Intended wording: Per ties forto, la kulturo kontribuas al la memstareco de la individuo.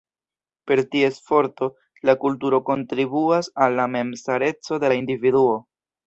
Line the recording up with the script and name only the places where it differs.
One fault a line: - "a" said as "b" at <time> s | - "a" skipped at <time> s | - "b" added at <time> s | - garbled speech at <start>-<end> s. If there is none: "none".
none